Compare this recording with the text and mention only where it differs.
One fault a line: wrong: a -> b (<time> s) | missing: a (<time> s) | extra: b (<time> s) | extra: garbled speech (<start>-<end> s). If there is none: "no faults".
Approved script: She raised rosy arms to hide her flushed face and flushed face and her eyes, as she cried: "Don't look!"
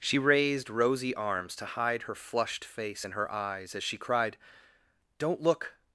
missing: flushed face and (3.1 s)